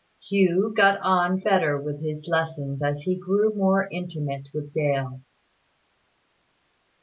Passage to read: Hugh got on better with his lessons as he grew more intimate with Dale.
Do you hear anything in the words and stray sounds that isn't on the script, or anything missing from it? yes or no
no